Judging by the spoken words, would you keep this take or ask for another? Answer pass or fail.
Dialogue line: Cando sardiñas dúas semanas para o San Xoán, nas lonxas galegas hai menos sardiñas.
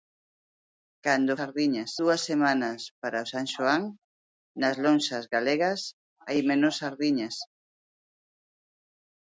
pass